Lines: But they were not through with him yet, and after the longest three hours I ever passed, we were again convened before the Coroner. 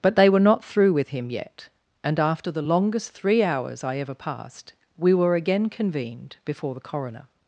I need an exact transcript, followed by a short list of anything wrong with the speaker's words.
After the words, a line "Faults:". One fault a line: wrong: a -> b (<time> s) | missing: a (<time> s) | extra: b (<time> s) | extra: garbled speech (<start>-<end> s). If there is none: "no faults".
But they were not through with him yet, and after the longest three hours I ever passed, we were again convened before the Coroner.
Faults:
no faults